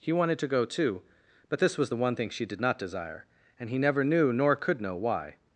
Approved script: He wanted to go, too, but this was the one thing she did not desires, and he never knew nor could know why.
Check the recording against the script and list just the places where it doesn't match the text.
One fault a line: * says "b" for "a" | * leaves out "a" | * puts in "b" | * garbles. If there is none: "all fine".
* says "desire" for "desires"